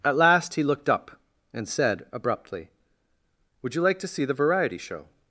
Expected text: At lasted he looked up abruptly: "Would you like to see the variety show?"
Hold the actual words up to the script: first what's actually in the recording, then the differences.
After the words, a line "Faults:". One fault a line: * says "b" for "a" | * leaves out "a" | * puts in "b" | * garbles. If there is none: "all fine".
At last he looked up and said abruptly: "Would you like to see the variety show?"
Faults:
* says "last" for "lasted"
* puts in "and said"